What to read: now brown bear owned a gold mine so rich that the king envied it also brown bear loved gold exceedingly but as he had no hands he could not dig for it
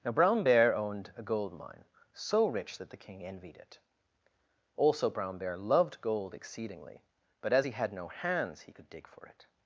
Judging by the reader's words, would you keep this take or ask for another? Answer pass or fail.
fail